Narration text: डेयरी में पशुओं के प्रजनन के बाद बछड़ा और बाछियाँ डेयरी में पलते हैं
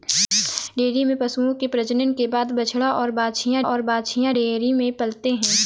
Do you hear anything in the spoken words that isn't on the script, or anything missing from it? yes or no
yes